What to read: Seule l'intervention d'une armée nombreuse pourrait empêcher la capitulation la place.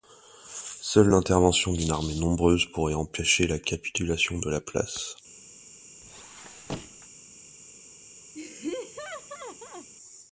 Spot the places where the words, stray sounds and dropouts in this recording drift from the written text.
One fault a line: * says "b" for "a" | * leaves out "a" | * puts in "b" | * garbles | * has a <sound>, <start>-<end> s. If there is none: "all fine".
* puts in "de"
* has a squeak, 6.0-7.1 s
* has a laugh, 8.3-9.9 s